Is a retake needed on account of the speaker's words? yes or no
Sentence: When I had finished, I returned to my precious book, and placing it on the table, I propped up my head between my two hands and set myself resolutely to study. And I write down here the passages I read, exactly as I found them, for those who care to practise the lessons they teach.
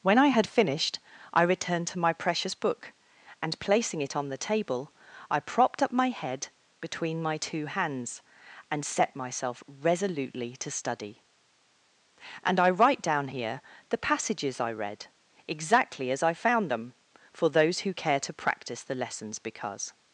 yes